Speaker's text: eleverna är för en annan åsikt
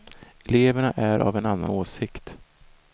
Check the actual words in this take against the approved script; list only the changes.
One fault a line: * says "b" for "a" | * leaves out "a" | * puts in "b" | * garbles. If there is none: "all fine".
* says "av" for "för"